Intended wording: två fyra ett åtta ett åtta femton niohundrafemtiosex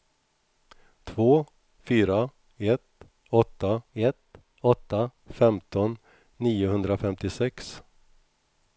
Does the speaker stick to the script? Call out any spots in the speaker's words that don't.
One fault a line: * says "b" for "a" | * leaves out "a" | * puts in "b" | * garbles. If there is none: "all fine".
all fine